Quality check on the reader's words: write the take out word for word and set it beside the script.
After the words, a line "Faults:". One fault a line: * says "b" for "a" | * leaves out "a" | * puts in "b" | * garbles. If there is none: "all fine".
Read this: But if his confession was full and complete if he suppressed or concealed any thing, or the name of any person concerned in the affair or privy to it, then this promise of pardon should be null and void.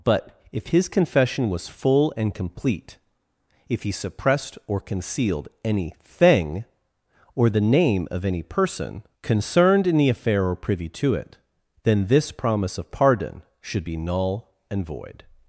But if his confession was full and complete if he suppressed or concealed any thing, or the name of any person concerned in the affair or privy to it, then this promise of pardon should be null and void.
Faults:
all fine